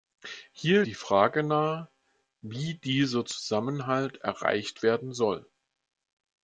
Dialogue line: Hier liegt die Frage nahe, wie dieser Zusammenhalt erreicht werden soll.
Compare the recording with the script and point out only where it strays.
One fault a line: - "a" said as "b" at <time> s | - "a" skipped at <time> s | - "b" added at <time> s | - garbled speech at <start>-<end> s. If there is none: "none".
- "liegt" skipped at 0.8 s